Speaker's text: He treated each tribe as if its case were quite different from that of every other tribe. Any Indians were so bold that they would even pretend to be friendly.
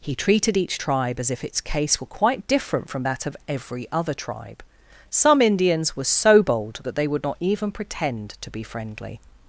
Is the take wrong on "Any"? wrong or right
wrong